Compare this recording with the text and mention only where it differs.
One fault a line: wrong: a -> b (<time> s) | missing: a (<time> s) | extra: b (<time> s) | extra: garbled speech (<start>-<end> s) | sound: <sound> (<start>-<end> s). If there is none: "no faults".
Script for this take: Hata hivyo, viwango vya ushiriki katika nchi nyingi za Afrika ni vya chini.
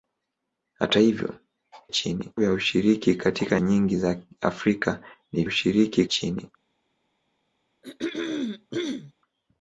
wrong: viwango -> chini (1.9 s)
missing: nchi (3.6 s)
wrong: vya -> ushiriki (5.4 s)
sound: throat clearing (7.8-9.1 s)